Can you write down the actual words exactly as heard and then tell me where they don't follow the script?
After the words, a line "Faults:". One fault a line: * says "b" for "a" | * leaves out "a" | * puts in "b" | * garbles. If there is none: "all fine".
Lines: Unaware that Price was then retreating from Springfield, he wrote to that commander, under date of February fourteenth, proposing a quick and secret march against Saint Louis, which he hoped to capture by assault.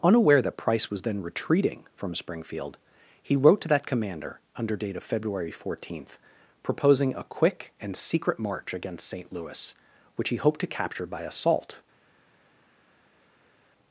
Unaware that Price was then retreating from Springfield, he wrote to that commander, under date of February fourteenth, proposing a quick and secret march against Saint Louis, which he hoped to capture by assault.
Faults:
all fine